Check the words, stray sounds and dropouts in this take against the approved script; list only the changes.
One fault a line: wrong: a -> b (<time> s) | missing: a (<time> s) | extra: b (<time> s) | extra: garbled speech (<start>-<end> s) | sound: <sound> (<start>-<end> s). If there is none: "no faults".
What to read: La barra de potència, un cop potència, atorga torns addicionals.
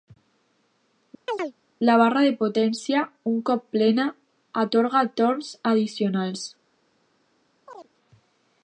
sound: chirp (1.3-1.5 s)
wrong: potència -> plena (3.8 s)
sound: chirp (7.7-7.9 s)